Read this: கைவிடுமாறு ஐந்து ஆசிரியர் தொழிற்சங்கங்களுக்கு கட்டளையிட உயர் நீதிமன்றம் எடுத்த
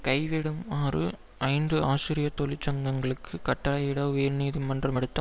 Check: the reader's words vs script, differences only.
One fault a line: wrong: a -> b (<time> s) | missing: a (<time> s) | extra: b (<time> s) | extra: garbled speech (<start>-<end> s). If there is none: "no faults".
no faults